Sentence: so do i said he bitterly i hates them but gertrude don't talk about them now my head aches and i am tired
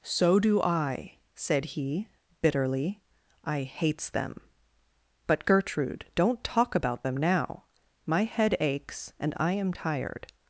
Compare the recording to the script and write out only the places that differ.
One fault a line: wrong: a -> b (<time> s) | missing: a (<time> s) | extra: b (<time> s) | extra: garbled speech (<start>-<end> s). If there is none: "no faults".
no faults